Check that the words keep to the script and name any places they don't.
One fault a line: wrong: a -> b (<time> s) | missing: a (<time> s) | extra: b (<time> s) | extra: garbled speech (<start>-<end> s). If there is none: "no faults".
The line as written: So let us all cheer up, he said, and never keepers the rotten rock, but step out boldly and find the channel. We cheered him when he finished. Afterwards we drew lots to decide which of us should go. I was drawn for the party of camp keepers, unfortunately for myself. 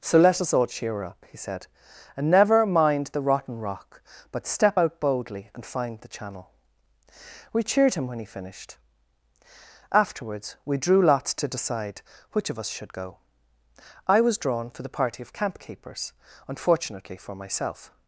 wrong: keepers -> mind (2.6 s)